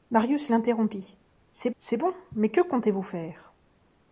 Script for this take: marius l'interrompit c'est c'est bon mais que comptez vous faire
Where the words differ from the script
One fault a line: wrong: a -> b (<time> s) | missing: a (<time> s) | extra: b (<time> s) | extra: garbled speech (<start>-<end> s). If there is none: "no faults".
no faults